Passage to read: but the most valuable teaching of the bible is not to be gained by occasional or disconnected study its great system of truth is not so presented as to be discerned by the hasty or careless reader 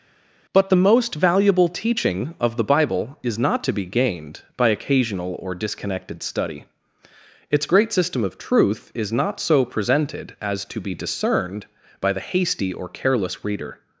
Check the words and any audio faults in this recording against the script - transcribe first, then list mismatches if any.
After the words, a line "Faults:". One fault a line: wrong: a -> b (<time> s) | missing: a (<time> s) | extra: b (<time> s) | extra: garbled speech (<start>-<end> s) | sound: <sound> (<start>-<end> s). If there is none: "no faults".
but the most valuable teaching of the bible is not to be gained by occasional or disconnected study its great system of truth is not so presented as to be discerned by the hasty or careless reader
Faults:
no faults